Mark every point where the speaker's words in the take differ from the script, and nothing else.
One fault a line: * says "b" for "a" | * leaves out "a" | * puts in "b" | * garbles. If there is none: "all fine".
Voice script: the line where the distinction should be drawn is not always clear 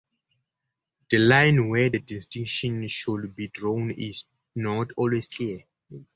all fine